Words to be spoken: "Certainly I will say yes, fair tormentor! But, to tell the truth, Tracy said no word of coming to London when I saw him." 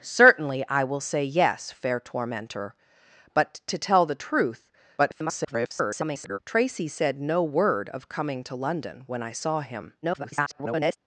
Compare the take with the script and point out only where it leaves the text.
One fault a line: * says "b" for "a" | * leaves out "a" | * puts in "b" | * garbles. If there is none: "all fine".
* garbles
* garbles